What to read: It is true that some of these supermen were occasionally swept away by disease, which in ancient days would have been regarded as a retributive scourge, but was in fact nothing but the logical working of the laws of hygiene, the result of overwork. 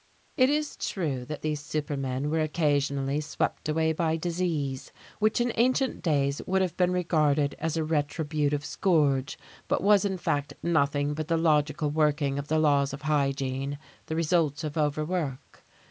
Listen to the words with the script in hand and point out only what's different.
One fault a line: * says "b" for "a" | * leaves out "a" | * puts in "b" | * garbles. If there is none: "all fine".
* leaves out "some of"